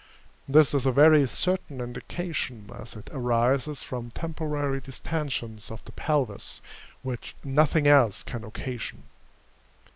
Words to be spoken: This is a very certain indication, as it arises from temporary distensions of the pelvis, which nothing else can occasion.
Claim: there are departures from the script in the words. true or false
false